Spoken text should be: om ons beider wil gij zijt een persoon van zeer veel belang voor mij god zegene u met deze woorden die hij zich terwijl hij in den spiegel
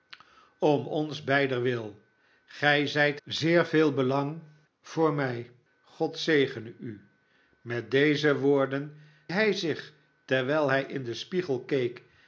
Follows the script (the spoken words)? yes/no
no